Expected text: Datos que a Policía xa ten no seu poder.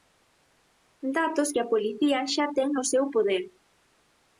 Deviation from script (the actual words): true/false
false